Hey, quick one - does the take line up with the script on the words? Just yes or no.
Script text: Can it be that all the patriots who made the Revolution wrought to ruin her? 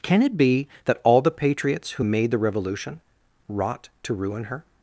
yes